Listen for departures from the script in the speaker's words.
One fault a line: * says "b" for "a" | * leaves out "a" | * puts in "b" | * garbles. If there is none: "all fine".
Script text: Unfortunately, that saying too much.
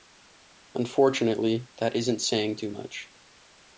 * puts in "isn't"